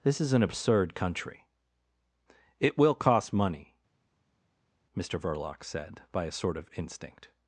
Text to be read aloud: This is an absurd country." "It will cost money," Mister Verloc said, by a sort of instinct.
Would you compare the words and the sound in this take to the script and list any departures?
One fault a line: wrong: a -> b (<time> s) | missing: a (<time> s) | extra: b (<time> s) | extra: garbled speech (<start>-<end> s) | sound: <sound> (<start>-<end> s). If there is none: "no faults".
no faults